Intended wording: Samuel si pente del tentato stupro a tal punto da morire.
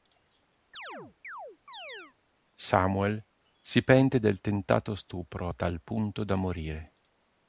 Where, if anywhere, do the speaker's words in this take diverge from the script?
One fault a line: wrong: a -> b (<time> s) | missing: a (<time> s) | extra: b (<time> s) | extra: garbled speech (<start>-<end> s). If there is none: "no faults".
no faults